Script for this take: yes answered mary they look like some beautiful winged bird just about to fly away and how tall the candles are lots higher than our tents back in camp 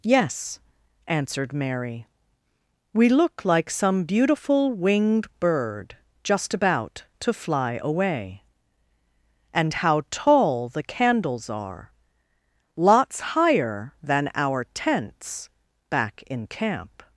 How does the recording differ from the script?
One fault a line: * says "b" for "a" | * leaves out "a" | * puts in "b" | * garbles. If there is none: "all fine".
* says "we" for "they"